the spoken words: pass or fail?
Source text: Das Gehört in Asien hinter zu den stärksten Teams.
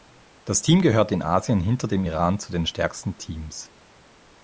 fail